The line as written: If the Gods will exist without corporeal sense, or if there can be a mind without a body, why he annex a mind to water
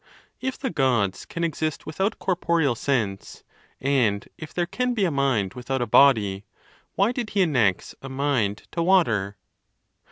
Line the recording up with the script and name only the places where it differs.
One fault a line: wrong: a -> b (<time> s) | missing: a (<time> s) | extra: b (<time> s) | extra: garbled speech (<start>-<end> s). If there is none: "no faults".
wrong: will -> can (1.3 s)
wrong: or -> and (3.8 s)
extra: did (7.1 s)